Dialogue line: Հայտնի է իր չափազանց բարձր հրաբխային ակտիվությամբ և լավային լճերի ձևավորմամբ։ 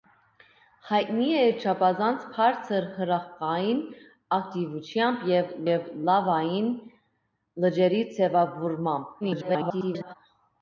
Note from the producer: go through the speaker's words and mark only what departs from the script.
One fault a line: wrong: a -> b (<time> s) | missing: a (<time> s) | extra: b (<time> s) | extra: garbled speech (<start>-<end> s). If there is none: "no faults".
extra: և (5.7 s)
extra: garbled speech (9.2-10.1 s)